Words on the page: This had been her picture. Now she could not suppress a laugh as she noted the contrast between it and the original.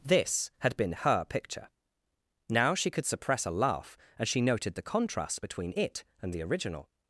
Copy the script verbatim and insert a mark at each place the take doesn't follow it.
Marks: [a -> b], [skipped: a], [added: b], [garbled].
This had been her picture. Now she could [skipped: not] suppress a laugh as she noted the contrast between it and the original.